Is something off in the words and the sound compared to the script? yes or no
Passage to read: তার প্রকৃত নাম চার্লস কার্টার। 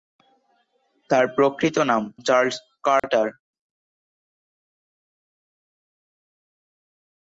yes